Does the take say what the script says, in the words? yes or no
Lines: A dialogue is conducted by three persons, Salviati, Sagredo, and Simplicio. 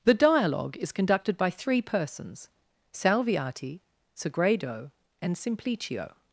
no